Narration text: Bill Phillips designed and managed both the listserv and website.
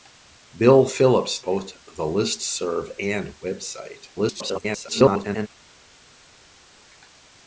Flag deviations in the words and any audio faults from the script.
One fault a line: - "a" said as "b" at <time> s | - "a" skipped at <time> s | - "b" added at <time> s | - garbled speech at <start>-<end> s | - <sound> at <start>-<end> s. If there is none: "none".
- "designed and managed" skipped at 1.4 s
- garbled speech at 4.2-5.5 s